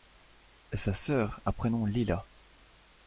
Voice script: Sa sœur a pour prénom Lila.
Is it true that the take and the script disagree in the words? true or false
true